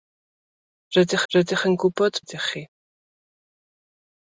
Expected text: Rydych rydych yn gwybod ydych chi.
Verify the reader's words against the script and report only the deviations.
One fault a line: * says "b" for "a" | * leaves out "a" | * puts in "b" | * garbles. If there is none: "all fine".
all fine